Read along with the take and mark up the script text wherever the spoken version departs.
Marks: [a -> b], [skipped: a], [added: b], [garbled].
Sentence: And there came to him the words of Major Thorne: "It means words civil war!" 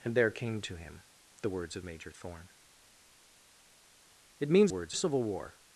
And there came to him the words of Major Thorne: "It means words civil war!"